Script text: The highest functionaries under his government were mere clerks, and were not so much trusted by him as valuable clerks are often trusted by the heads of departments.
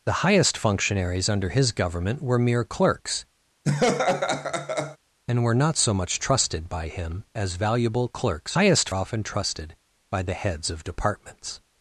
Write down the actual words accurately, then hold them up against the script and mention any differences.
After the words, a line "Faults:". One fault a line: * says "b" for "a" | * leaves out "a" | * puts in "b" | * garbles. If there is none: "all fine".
The highest functionaries under his government were mere clerks, and were not so much trusted by him as valuable clerks highest often trusted by the heads of departments.
Faults:
* says "highest" for "are"